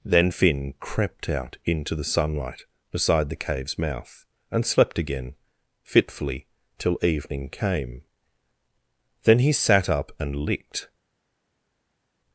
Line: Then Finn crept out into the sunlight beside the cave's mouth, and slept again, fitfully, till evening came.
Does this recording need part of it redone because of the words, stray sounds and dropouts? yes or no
yes